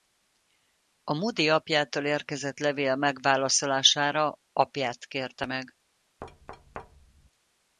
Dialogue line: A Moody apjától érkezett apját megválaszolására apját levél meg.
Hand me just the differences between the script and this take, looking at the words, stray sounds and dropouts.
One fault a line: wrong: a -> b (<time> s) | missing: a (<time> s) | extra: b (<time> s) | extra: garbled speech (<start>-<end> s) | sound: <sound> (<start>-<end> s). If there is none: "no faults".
wrong: apját -> levél (2.6 s)
wrong: levél -> kérte (5.1 s)
sound: thud (6.2-7.3 s)